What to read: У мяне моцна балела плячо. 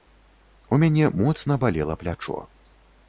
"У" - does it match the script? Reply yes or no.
yes